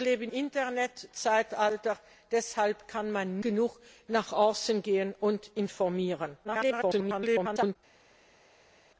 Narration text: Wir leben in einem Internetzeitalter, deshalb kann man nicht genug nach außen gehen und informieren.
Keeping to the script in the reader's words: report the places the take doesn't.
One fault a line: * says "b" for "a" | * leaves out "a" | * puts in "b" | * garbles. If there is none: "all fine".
* leaves out "in einem"
* leaves out "nicht"
* garbles